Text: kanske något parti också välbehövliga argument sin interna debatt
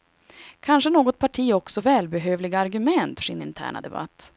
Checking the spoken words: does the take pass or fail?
pass